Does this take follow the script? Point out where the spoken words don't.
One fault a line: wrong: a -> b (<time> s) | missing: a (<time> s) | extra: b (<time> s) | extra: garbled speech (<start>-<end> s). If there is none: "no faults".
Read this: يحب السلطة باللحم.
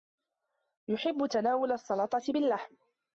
extra: تناول (1.3 s)